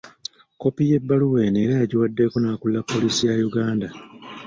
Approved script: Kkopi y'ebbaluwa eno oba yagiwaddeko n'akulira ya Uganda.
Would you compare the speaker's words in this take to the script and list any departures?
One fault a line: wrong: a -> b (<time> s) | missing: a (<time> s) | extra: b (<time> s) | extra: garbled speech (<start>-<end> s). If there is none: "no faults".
wrong: oba -> era (1.6 s)
extra: poliisi (2.9 s)